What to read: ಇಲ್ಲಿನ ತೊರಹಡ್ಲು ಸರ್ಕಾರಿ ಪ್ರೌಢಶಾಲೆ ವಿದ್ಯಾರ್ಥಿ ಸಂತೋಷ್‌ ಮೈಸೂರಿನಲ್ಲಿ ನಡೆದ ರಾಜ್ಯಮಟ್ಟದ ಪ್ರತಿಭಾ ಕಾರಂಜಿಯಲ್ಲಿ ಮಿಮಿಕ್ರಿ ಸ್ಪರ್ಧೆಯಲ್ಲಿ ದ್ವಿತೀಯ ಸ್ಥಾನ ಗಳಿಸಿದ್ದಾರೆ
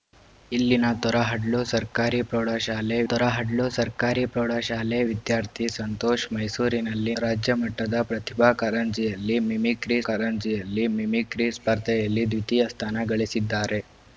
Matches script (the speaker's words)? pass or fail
fail